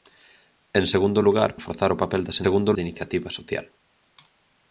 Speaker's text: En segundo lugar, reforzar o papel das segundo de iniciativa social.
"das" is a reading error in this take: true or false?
false